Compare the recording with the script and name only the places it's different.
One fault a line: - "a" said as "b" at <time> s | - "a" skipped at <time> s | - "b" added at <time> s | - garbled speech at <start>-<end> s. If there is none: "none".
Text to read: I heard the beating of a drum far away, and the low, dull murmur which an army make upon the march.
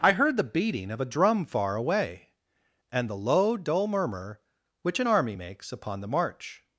- "make" said as "makes" at 5.3 s